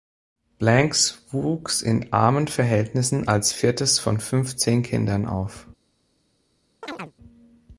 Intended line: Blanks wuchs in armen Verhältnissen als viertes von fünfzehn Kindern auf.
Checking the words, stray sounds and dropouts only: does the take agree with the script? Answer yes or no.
no